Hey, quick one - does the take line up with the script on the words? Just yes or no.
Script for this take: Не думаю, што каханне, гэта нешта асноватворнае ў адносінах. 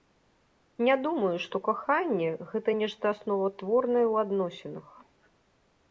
yes